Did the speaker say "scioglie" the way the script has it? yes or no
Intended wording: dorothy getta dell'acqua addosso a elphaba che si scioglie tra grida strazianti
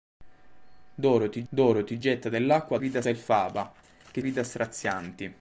no